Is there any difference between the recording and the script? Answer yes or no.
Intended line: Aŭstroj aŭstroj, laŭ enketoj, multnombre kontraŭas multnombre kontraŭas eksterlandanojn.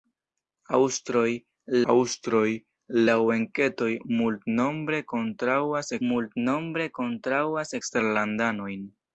no